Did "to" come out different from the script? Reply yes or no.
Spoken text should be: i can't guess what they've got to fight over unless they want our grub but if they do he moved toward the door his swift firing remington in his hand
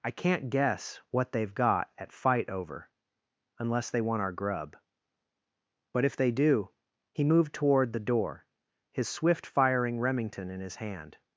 yes